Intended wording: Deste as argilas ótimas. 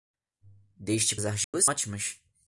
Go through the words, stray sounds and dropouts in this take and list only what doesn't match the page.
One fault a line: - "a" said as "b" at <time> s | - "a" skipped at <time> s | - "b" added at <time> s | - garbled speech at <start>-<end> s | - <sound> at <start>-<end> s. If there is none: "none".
- dropout at 1.4-1.5 s